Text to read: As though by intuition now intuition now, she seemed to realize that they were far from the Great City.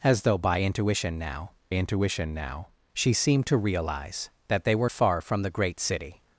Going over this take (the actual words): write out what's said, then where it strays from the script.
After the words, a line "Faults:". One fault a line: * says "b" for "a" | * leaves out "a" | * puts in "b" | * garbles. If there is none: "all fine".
As though by intuition now intuition now, she seemed to realize that they were far from the Great City.
Faults:
all fine